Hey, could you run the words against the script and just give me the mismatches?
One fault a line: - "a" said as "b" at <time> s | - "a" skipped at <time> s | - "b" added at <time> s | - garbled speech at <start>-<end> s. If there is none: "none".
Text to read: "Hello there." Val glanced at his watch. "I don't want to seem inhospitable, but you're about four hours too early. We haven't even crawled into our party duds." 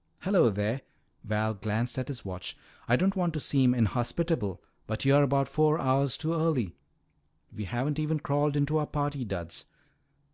none